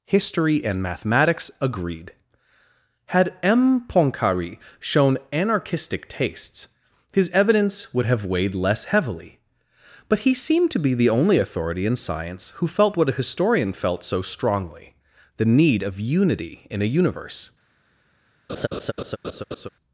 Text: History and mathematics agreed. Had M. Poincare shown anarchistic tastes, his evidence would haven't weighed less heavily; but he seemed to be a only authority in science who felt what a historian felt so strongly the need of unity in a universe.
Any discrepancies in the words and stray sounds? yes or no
yes